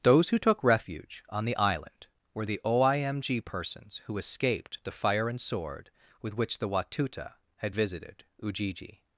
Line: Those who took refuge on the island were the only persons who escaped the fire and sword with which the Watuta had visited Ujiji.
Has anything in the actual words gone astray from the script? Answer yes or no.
yes